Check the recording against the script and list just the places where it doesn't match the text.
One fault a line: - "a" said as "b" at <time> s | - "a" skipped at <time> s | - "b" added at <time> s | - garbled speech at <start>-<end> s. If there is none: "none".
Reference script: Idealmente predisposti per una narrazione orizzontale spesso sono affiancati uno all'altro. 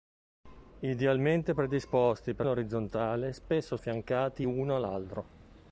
- "una narrazione" skipped at 2.5 s
- "sono" skipped at 3.8 s